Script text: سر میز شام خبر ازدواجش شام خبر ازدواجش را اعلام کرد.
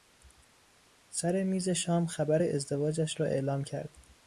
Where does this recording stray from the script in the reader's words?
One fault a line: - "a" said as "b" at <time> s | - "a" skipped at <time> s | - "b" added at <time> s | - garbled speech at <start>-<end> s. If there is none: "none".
- "شام خبر ازدواجش" skipped at 3.2 s